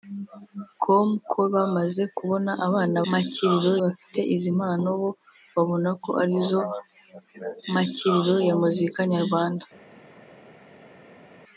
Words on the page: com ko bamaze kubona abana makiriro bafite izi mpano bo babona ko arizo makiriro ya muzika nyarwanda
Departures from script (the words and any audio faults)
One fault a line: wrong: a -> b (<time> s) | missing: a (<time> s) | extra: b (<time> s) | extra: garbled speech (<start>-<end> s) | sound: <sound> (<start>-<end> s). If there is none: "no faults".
no faults